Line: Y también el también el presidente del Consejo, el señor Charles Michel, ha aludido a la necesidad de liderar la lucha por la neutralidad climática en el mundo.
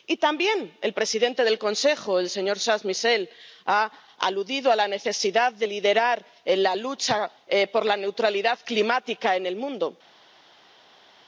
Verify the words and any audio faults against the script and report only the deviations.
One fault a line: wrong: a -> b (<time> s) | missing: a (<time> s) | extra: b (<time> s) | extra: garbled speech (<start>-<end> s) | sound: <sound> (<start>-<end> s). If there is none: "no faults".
missing: también el (0.9 s)